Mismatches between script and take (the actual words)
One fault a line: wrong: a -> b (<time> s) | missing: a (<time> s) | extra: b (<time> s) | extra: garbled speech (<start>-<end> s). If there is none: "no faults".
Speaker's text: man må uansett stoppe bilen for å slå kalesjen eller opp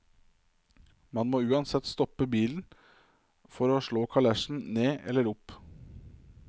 extra: ned (4.8 s)